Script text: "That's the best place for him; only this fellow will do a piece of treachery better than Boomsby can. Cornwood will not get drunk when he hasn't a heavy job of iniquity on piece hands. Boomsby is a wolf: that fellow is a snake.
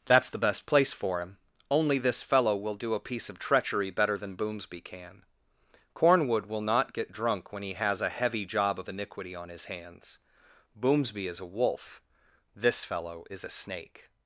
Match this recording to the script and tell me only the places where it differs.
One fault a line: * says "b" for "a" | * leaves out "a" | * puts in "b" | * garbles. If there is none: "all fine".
* says "has" for "hasn't"
* says "his" for "piece"
* says "this" for "that"